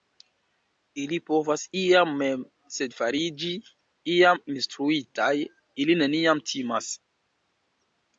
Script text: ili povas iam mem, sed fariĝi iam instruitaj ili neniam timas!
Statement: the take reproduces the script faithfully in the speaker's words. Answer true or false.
true